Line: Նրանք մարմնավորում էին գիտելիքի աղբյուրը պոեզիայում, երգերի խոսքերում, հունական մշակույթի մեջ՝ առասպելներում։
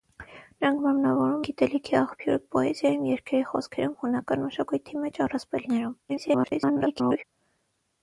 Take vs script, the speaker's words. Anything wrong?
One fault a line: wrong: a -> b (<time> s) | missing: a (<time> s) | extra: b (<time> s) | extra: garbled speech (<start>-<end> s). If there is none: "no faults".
missing: էին (1.4 s)
extra: garbled speech (6.1-7.2 s)